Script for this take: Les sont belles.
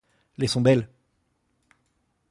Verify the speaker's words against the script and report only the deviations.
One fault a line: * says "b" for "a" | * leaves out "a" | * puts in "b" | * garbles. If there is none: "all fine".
all fine